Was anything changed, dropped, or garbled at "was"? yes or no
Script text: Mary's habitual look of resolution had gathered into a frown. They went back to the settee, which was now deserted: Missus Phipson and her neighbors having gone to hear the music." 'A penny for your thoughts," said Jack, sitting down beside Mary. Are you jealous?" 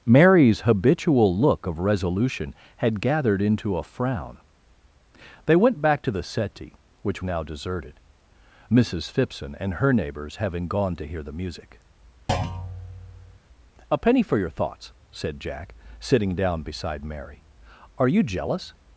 yes